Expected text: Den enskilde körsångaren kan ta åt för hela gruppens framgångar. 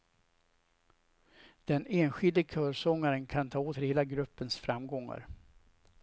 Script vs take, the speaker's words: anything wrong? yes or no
no